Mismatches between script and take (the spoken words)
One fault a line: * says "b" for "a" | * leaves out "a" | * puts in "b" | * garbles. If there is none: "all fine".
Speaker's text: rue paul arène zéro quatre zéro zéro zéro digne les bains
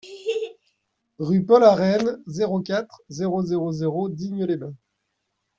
all fine